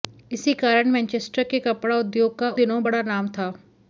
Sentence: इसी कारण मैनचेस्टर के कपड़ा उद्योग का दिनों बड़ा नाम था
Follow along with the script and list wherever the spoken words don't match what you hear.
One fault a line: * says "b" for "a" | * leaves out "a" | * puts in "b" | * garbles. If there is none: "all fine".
all fine